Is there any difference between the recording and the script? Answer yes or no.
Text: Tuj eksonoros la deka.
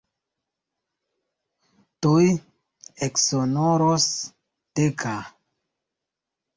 yes